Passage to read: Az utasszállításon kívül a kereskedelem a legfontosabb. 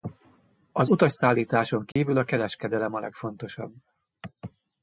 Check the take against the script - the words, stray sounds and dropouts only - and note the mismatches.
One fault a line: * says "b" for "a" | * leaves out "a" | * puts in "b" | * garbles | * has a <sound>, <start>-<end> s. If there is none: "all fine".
* has a dropout, 1.9-2.0 s